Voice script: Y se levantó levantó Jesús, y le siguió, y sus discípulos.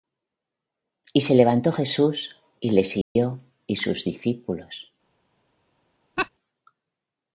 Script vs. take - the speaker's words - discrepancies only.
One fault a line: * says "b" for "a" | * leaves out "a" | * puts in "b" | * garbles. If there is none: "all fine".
* leaves out "levantó"